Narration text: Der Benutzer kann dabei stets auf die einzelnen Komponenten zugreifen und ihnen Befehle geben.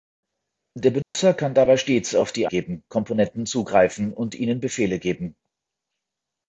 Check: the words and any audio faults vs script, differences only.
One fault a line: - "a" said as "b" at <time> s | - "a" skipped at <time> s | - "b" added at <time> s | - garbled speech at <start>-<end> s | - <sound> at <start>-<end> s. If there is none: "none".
- dropout at 1.0-1.2 s
- "einzelnen" said as "geben" at 2.5 s